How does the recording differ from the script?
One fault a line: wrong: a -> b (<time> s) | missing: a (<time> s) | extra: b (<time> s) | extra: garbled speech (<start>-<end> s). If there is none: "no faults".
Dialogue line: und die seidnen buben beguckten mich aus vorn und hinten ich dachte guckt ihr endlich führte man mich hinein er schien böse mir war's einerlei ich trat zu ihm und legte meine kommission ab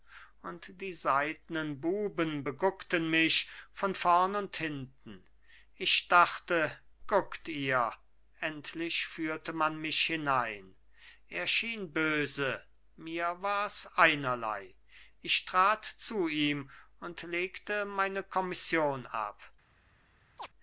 wrong: aus -> von (3.7 s)